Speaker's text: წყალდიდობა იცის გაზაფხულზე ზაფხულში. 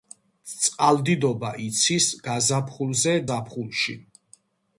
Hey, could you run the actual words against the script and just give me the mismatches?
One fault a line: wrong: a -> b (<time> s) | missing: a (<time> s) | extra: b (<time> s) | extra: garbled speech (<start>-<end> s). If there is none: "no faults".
no faults